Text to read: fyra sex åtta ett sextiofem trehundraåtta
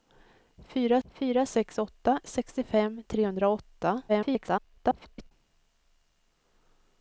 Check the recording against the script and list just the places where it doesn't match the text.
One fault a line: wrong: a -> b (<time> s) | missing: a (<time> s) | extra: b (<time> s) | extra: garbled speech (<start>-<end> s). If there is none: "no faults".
extra: fyra (1.0 s)
missing: ett (2.2 s)
extra: garbled speech (4.1-5.3 s)